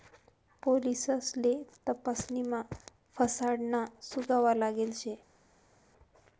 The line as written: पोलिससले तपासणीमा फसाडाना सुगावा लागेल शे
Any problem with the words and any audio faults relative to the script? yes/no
no